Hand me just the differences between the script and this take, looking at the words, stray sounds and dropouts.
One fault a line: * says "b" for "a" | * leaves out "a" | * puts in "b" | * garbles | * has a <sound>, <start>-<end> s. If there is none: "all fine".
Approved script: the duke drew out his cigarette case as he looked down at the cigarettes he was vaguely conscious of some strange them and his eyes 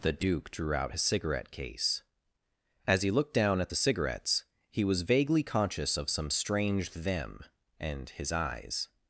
all fine